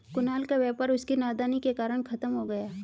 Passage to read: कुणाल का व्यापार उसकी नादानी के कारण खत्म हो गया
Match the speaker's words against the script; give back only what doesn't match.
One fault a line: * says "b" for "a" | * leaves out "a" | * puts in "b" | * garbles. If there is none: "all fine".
all fine